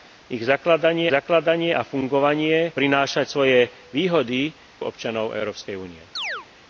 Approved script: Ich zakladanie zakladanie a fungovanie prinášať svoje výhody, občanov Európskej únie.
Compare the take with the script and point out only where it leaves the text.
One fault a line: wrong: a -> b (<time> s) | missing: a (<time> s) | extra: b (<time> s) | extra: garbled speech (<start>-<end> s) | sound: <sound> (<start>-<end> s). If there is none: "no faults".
sound: chirp (6.2-6.5 s)